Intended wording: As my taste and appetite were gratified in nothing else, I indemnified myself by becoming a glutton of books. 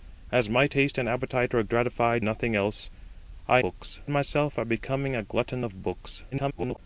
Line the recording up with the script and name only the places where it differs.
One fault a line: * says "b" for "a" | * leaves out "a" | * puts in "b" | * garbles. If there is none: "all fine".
* leaves out "in"
* says "books" for "indemnified"
* garbles